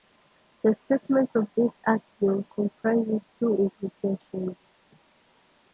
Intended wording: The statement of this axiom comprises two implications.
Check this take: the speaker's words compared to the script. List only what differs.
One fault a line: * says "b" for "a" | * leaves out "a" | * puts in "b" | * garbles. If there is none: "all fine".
all fine